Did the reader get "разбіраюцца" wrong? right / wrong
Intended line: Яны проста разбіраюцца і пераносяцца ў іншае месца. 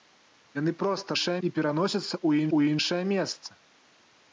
wrong